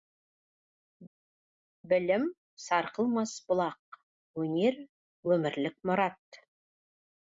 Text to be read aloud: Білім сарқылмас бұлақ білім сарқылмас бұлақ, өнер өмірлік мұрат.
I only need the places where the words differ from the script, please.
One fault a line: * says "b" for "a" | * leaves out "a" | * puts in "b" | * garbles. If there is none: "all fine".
* leaves out "білім сарқылмас бұлақ"